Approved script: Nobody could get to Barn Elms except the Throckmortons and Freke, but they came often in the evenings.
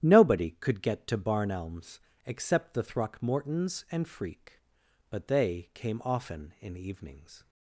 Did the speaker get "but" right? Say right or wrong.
right